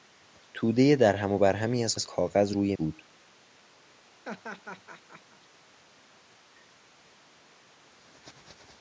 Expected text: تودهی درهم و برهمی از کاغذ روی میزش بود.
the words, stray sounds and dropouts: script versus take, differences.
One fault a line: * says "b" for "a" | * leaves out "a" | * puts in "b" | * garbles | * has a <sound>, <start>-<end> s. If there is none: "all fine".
* puts in "از"
* leaves out "میزش"
* has a laugh, 4.2-5.5 s